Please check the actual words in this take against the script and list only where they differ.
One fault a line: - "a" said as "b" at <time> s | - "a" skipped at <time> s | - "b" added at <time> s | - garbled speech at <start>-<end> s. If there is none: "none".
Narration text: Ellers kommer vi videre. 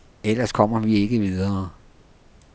- "ikke" added at 1.0 s